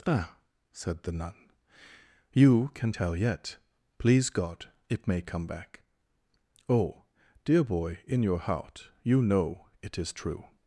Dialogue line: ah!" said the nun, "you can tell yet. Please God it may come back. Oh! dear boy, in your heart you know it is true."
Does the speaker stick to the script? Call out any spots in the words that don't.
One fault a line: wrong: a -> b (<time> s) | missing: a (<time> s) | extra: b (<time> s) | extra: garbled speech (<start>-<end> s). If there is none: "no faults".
no faults